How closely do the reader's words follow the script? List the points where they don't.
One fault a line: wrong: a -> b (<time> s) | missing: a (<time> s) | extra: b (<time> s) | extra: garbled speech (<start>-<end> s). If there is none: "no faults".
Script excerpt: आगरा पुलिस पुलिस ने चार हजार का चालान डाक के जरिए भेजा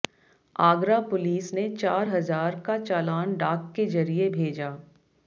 missing: पुलिस (1.6 s)